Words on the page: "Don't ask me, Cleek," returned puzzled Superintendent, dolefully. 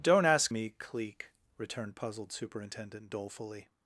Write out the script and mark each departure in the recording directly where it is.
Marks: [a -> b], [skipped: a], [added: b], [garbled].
"Don't ask me, Cleek," returned puzzled Superintendent, dolefully.